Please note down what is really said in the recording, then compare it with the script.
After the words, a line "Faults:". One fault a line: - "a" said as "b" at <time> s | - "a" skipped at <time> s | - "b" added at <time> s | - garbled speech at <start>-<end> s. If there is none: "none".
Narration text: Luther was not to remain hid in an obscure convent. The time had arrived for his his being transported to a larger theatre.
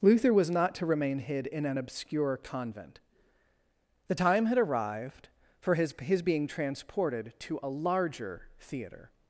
Luther was not to remain hid in an obscure convent. The time had arrived for his his being transported to a larger theatre.
Faults:
none